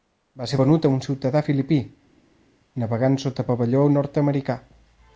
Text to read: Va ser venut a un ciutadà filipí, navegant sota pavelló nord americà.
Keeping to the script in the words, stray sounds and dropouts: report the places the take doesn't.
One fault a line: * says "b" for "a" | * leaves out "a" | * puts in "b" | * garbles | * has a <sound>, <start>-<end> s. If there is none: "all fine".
all fine